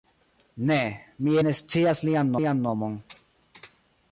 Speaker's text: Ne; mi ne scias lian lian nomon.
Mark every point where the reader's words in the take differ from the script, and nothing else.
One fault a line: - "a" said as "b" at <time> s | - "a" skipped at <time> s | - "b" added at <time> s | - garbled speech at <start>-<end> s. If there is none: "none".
none